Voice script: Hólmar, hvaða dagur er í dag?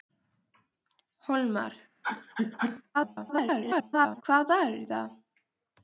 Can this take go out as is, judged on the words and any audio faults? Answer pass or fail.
fail